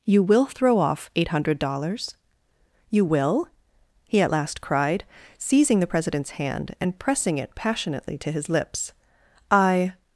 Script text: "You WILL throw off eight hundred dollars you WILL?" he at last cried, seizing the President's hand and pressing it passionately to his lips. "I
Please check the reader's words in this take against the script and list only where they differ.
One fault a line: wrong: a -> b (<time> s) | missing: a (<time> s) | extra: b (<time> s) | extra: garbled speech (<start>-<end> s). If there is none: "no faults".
no faults